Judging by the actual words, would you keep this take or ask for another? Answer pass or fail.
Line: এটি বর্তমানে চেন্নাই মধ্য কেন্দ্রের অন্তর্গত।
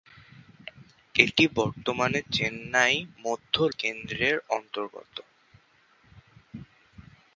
pass